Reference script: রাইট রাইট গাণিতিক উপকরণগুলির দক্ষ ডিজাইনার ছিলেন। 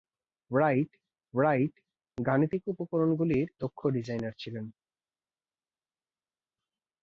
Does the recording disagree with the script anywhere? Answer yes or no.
no